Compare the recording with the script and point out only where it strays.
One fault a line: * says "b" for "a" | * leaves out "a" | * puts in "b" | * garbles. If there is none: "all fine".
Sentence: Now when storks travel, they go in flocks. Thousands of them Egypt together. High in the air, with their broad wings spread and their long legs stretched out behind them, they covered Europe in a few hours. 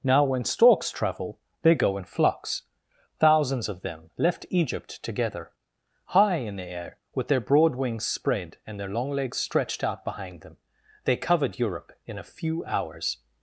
* puts in "left"